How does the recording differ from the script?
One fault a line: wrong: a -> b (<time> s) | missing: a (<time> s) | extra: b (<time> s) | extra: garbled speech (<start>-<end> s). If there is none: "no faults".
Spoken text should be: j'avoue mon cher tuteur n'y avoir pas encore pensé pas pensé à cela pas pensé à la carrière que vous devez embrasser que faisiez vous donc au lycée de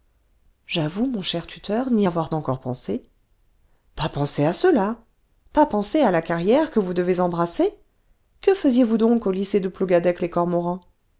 missing: pas (2.3 s)